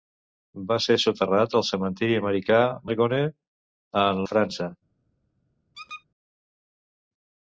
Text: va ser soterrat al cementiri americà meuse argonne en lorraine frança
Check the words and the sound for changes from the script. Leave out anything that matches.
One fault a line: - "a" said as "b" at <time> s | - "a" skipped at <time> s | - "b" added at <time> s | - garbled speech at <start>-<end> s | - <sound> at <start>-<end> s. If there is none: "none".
- "meuse" skipped at 2.6 s
- "lorraine" skipped at 4.3 s
- squeak at 5.7-6.0 s